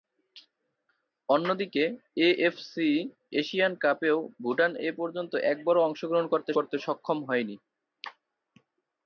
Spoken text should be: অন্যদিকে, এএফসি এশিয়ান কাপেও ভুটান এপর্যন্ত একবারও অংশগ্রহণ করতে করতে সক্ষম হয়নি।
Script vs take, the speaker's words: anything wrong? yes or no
no